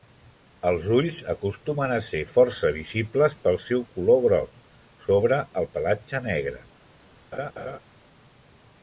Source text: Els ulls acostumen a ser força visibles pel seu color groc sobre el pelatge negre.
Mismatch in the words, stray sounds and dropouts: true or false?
true